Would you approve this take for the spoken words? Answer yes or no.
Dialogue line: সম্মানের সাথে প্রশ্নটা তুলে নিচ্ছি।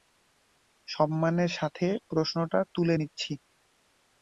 yes